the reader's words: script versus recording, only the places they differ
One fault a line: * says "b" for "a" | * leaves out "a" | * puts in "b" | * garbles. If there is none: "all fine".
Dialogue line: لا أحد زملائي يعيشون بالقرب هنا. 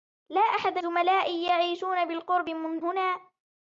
all fine